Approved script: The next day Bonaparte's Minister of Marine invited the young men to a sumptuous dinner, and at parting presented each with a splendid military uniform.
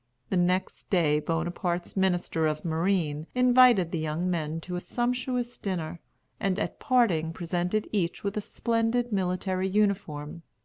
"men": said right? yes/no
yes